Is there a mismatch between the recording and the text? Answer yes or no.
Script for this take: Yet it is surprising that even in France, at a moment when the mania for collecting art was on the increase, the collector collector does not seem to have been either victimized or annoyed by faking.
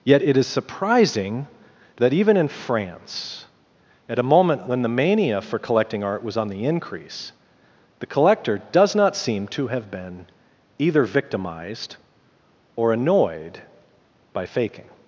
yes